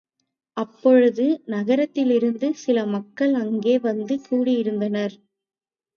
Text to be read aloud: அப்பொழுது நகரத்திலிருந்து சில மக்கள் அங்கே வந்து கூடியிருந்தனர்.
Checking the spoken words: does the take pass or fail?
pass